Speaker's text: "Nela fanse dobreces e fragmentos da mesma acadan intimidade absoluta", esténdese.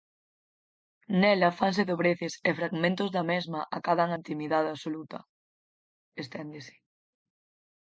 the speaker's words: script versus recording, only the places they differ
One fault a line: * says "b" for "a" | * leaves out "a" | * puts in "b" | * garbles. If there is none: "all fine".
all fine